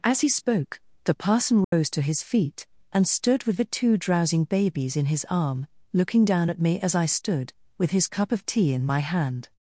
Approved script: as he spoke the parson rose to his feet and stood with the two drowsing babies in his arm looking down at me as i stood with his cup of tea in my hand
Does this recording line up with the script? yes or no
yes